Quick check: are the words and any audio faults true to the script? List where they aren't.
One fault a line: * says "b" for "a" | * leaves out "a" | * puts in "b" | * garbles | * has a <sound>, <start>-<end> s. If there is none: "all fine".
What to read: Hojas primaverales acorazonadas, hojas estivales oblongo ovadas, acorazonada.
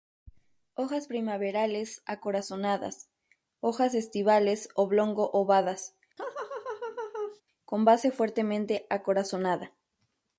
* has a laugh, 6.2-7.4 s
* puts in "con base fuertemente"